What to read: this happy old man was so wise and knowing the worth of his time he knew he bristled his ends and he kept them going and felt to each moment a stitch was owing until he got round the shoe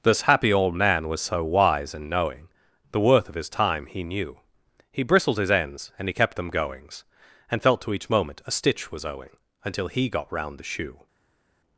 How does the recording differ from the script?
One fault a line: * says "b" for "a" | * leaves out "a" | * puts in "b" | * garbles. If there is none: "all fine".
* says "goings" for "going"